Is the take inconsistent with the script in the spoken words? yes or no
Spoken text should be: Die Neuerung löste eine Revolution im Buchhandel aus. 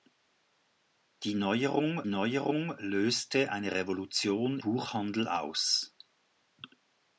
yes